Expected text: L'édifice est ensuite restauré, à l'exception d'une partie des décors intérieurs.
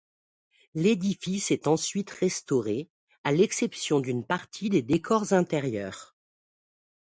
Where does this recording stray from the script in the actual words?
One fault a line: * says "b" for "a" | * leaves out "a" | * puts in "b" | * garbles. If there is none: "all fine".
all fine